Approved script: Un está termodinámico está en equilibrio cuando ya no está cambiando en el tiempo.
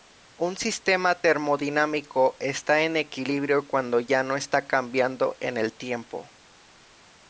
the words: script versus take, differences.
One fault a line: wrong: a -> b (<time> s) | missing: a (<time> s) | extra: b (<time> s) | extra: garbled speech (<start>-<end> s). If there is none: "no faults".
wrong: está -> sistema (0.6 s)